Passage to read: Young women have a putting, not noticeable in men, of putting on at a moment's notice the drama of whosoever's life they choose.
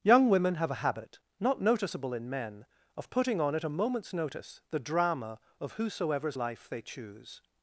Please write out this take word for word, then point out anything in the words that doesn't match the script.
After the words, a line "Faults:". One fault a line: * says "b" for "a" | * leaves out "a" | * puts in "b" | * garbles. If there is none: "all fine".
Young women have a habit, not noticeable in men, of putting on at a moment's notice the drama of whosoever's life they choose.
Faults:
* says "habit" for "putting"